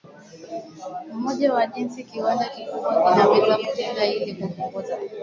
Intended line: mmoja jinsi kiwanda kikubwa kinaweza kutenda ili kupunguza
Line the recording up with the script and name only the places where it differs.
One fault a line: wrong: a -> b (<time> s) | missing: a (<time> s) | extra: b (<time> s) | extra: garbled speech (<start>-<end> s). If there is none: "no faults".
extra: wa (1.5 s)